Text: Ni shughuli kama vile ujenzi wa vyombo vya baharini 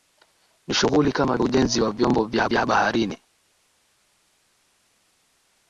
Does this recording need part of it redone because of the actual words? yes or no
yes